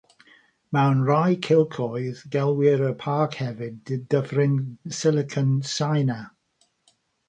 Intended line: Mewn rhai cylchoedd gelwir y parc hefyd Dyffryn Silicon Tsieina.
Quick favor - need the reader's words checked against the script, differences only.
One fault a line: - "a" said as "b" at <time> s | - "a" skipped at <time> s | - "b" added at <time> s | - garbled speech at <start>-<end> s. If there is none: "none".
none